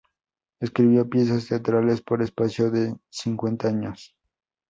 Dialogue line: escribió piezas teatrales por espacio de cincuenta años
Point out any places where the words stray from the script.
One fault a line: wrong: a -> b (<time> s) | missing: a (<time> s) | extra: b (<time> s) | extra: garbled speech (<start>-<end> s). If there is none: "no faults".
no faults